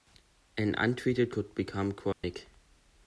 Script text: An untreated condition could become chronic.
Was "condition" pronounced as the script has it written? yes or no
no